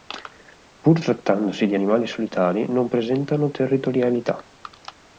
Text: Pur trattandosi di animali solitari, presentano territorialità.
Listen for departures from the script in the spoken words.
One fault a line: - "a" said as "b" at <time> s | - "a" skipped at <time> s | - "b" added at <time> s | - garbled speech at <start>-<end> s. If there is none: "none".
- "non" added at 2.7 s